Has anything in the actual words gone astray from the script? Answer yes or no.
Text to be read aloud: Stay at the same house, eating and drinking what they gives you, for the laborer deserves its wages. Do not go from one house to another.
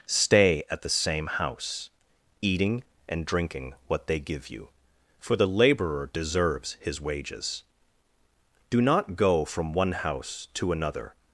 yes